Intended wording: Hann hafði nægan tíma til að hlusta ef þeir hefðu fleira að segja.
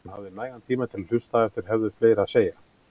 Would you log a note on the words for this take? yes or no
no